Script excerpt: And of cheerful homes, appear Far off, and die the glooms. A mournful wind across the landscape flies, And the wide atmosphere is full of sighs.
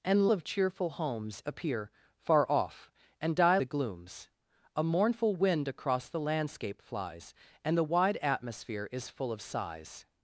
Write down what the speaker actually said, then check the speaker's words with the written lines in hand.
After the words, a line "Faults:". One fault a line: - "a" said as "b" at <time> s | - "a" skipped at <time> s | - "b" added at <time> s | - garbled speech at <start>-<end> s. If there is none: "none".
And of cheerful homes, appear Far off, and die the glooms. A mournful wind across the landscape flies, And the wide atmosphere is full of sighs.
Faults:
none